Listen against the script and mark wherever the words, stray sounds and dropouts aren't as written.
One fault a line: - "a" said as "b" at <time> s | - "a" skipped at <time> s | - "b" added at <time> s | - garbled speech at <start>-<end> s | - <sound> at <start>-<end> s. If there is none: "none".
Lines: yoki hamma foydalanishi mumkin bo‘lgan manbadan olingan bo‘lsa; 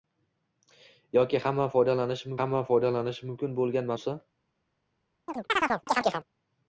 - "hamma foydalanishi" added at 2.4 s
- "manbadan olingan" skipped at 3.9 s
- chirp at 5.3-6.3 s